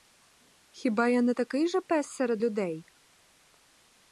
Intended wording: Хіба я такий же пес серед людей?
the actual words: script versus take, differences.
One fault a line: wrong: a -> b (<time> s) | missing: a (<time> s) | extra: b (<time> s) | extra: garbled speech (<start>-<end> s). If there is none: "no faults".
extra: не (1.2 s)